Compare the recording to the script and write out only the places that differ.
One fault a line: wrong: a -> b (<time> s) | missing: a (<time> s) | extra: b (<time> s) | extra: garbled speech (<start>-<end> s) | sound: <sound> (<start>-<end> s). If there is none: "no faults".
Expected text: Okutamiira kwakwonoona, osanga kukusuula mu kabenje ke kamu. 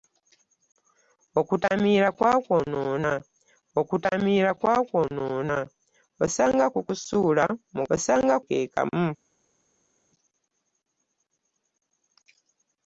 extra: okutamiira kwakwonoona (3.8 s)
wrong: kabenje -> osanga (7.9 s)